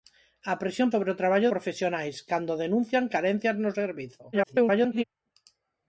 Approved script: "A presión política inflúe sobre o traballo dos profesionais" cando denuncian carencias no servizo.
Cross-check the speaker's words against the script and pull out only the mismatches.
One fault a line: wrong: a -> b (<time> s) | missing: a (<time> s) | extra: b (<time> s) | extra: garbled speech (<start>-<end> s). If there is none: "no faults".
missing: política inflúe (0.9 s)
missing: dos (1.5 s)
extra: garbled speech (4.3-5.0 s)